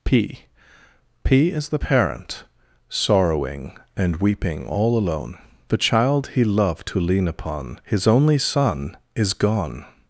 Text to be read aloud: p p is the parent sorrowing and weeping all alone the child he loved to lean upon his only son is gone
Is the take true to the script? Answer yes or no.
yes